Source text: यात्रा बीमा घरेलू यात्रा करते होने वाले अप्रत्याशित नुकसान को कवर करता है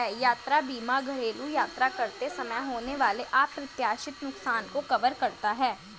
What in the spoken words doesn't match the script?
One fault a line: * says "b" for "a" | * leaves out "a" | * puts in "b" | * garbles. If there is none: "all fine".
* puts in "समय"